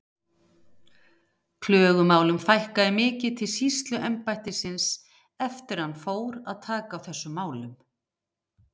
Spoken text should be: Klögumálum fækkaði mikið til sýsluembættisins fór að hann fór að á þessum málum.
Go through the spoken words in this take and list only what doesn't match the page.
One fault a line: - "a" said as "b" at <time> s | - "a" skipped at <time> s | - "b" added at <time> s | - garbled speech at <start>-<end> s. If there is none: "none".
- "fór" said as "eftir" at 5.5 s
- "taka" added at 6.7 s